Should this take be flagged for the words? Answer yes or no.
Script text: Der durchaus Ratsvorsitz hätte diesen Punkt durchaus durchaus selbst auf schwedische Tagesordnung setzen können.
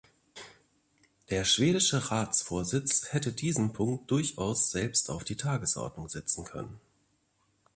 yes